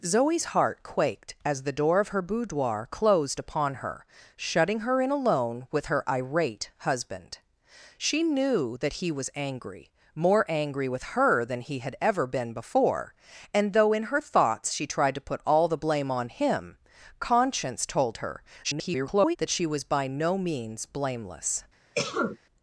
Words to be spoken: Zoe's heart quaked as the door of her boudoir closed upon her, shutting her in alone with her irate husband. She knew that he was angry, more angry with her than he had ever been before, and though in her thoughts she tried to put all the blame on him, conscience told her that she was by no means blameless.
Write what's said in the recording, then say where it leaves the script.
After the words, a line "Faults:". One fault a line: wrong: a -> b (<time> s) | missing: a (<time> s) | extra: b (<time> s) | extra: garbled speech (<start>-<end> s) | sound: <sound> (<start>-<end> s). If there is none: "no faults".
Zoe's heart quaked as the door of her boudoir closed upon her, shutting her in alone with her irate husband. She knew that he was angry, more angry with her than he had ever been before, and though in her thoughts she tried to put all the blame on him, conscience told her [garbled] that she was by no means blameless.
Faults:
extra: garbled speech (18.6-19.4 s)
sound: cough (21.9-22.4 s)